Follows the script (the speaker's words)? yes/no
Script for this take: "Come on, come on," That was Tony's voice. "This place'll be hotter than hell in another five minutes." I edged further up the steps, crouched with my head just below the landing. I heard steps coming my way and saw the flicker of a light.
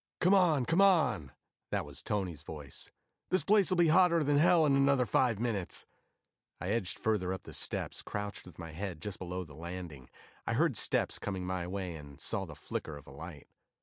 yes